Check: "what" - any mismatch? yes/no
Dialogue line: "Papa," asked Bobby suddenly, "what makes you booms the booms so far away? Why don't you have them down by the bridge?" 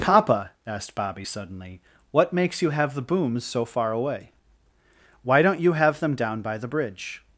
no